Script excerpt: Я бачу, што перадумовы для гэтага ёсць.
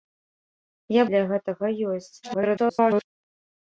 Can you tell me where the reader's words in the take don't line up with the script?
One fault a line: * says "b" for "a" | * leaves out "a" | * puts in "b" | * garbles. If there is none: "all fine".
* leaves out "бачу што перадумовы"
* garbles